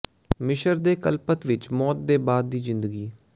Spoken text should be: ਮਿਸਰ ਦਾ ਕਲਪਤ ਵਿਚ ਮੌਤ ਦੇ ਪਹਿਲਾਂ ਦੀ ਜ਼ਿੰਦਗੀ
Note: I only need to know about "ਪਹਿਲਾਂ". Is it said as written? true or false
false